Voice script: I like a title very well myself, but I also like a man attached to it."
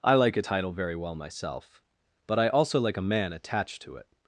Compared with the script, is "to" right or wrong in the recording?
right